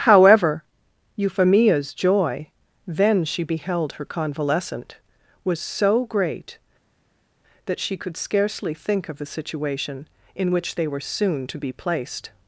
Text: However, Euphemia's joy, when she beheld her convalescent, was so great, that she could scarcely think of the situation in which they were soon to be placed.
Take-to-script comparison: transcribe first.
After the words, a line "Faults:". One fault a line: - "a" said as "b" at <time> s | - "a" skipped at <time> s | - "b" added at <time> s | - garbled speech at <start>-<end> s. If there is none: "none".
However, Euphemia's joy, then she beheld her convalescent, was so great, that she could scarcely think of the situation in which they were soon to be placed.
Faults:
- "when" said as "then" at 2.9 s